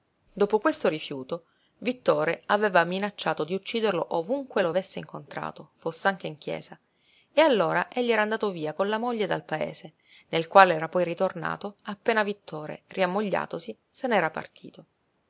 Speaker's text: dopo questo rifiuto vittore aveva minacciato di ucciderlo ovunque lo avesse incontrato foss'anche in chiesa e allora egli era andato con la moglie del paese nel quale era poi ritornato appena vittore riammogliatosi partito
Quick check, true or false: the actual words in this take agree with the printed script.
false